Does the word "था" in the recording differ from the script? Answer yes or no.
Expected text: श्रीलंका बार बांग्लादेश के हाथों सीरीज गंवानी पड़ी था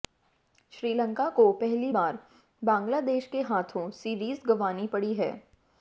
yes